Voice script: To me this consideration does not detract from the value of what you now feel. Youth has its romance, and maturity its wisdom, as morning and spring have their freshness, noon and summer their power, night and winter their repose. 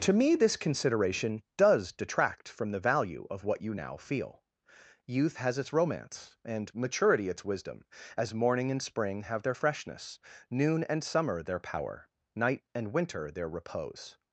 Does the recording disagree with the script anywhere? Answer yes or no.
yes